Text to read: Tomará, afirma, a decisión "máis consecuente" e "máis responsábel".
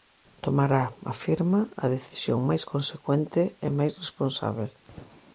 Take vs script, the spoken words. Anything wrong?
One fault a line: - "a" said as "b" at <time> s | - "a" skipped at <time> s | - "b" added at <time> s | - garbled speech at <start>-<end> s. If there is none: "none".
none